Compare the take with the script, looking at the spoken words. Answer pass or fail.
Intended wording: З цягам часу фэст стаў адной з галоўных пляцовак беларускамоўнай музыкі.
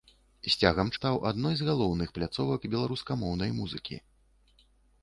fail